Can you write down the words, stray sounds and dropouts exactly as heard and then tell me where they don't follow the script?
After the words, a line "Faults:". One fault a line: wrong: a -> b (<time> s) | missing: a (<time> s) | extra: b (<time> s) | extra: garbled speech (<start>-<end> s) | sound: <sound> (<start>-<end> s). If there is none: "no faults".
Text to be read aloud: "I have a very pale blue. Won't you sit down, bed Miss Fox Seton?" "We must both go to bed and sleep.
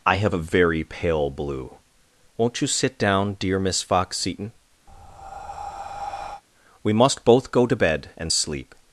"I have a very pale blue. Won't you sit down, dear Miss Fox Seton?" "We must both go to bed and sleep.
Faults:
wrong: bed -> dear (3.3 s)
sound: breath (4.9-6.4 s)